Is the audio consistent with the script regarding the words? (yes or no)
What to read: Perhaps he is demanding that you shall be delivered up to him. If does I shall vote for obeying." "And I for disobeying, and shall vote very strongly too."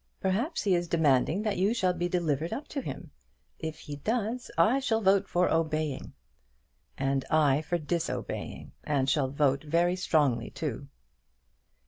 no